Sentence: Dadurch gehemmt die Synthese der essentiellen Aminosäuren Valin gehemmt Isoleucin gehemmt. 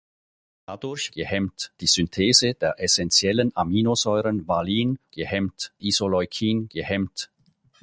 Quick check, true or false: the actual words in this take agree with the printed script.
true